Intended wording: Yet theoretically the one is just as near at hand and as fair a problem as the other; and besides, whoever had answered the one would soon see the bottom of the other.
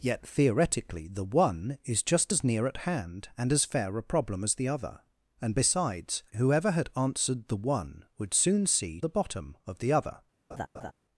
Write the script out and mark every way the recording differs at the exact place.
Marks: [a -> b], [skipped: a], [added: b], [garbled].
Yet theoretically the one is just as near at hand and as fair a problem as the other; and besides, whoever had answered the one would soon see the bottom of the other.